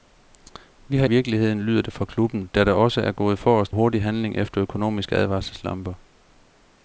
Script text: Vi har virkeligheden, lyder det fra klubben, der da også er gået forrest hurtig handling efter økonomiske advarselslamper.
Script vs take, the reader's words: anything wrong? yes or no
no